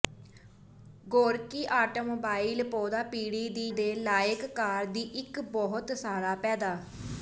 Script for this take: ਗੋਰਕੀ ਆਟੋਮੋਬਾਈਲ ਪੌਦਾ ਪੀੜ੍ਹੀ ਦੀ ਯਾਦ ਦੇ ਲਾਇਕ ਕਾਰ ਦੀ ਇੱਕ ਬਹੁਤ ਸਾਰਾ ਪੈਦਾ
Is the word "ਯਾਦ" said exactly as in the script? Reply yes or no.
no